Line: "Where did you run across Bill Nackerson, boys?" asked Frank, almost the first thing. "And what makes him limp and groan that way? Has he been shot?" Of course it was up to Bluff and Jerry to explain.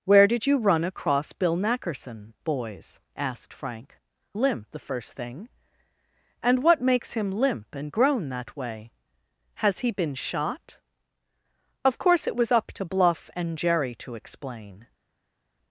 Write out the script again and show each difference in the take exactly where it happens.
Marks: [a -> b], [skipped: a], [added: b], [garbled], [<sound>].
"Where did you run across Bill Nackerson, boys?" asked Frank, [almost -> limp] the first thing. "And what makes him limp and groan that way? Has he been shot?" Of course it was up to Bluff and Jerry to explain.